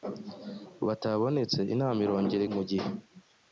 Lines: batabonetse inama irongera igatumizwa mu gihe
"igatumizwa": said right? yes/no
no